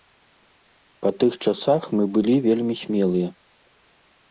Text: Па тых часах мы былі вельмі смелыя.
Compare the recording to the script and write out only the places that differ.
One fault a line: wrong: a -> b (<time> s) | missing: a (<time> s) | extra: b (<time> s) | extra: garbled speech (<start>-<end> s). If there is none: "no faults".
no faults